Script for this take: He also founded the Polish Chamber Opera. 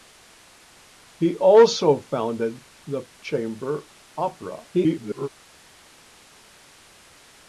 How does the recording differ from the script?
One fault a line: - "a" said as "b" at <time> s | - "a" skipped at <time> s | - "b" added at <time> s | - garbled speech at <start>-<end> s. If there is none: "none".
- "Polish" skipped at 3.0 s
- garbled speech at 4.7-5.3 s